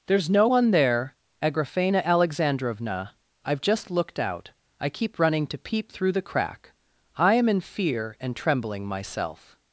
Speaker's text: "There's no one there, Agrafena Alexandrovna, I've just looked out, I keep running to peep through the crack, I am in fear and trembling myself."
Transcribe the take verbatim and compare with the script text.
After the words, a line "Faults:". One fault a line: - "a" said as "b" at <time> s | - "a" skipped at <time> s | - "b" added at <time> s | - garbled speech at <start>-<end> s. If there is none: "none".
"There's no one there, Agrafena Alexandrovna, I've just looked out, I keep running to peep through the crack, I am in fear and trembling myself."
Faults:
none